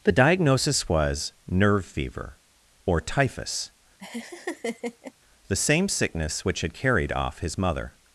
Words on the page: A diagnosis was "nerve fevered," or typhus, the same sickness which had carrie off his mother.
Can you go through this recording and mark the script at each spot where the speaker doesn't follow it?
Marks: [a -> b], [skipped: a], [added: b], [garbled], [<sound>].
[A -> The] diagnosis was "nerve [fevered," -> fever] or typhus, [laugh] the same sickness which had [carrie -> carried] off his mother.